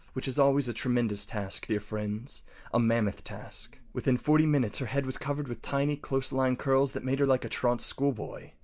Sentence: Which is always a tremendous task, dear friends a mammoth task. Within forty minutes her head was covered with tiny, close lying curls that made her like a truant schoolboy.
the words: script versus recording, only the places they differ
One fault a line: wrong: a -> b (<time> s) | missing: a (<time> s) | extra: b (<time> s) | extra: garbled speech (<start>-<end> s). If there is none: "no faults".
no faults